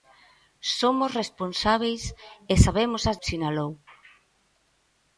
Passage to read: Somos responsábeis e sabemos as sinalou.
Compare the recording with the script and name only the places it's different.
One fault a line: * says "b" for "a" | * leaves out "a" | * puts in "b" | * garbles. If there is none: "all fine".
all fine